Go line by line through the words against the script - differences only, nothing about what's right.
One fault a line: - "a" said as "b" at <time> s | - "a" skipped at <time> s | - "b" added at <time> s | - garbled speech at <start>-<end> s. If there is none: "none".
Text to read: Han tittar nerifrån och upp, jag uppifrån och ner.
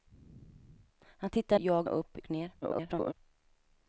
- "nerifrån" said as "jag" at 1.6 s
- "jag uppifrån" skipped at 2.2 s
- garbled speech at 2.6-3.1 s